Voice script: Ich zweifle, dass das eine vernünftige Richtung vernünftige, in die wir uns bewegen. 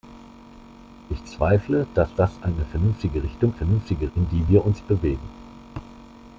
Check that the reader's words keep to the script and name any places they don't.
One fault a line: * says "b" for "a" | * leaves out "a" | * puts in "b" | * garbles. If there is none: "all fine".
all fine